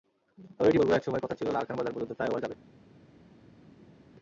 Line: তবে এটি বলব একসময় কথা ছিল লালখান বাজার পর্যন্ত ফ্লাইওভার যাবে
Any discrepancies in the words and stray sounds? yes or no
no